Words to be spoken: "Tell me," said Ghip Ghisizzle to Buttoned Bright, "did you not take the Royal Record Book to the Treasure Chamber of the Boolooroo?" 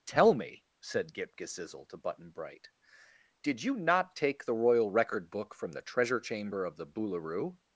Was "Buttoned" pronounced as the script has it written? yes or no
no